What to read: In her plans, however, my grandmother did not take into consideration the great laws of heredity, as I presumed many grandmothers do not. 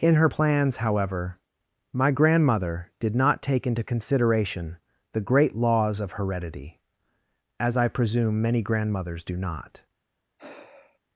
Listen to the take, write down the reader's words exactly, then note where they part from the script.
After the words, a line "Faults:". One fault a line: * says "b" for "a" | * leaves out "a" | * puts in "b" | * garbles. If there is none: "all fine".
In her plans, however, my grandmother did not take into consideration the great laws of heredity, as I presume many grandmothers do not.
Faults:
* says "presume" for "presumed"